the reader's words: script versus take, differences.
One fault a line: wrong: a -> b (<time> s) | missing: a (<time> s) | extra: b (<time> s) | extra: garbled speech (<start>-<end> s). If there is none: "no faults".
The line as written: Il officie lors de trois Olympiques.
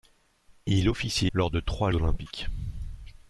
no faults